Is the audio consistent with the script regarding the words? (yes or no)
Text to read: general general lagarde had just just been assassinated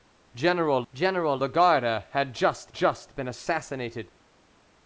yes